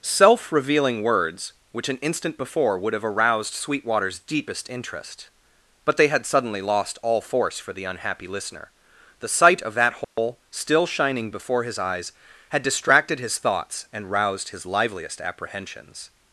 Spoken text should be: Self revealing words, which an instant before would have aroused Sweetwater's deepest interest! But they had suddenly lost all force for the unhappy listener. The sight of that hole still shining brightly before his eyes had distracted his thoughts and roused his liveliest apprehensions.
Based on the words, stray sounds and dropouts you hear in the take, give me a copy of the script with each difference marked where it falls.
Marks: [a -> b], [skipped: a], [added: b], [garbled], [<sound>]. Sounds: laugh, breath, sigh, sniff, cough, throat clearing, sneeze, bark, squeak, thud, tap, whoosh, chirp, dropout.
Self revealing words, which an instant before would have aroused Sweetwater's deepest interest! But they had suddenly lost all force for the unhappy listener. The sight of that hole [dropout] still shining [skipped: brightly] before his eyes had distracted his thoughts and roused his liveliest apprehensions.